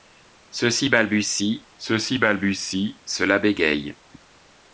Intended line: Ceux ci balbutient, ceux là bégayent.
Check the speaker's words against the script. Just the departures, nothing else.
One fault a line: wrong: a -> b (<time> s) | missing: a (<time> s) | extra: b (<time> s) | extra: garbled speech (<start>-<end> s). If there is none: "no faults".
extra: ci balbutient ceux (2.0 s)